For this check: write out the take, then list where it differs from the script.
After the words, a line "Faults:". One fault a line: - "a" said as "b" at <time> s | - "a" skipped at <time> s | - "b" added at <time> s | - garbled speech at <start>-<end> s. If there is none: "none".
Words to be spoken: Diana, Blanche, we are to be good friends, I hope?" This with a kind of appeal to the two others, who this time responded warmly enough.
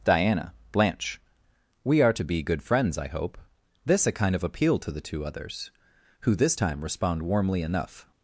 Diana, Blanche, we are to be good friends, I hope?" This a kind of appeal to the two others, who this time respond warmly enough.
Faults:
- "with" skipped at 4.0 s
- "responded" said as "respond" at 6.8 s